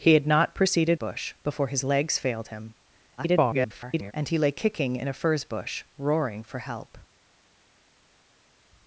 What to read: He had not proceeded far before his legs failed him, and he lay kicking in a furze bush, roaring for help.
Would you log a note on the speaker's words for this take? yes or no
yes